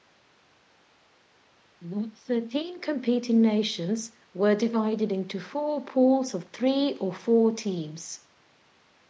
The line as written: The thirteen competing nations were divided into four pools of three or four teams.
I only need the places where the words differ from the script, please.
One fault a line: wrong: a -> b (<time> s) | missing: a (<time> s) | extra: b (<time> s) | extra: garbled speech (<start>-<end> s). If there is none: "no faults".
no faults